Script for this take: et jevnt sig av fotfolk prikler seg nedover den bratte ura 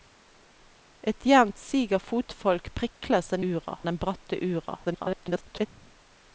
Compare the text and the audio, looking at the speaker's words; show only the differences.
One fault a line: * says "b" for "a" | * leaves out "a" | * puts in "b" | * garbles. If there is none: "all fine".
* says "ura" for "nedover"
* garbles